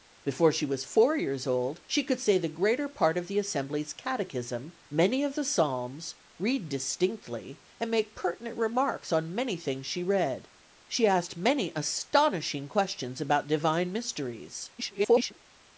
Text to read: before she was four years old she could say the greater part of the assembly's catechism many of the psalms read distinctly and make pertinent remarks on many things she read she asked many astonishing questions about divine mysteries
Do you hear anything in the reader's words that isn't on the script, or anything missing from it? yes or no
yes